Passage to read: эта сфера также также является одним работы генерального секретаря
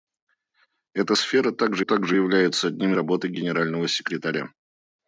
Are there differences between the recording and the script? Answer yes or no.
no